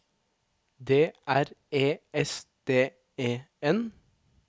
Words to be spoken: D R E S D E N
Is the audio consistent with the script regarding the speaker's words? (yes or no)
yes